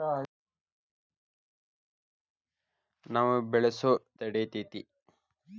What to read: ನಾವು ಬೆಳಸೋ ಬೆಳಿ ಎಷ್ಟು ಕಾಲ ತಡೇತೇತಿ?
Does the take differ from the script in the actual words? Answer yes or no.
yes